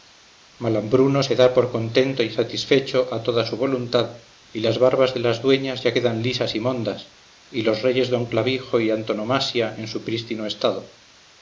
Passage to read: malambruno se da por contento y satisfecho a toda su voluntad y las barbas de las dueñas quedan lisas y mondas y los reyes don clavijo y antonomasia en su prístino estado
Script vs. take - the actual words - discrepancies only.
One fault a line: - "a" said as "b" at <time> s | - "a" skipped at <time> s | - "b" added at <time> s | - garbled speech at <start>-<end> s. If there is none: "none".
- "ya" added at 5.8 s